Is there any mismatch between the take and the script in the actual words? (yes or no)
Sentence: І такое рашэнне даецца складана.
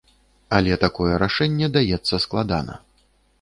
yes